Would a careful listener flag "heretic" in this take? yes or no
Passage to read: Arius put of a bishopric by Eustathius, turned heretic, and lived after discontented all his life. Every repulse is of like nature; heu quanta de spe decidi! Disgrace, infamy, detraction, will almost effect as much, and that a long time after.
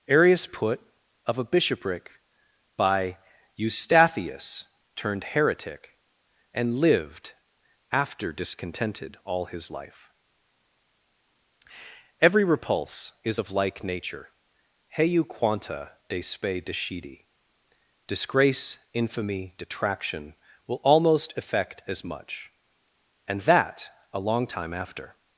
no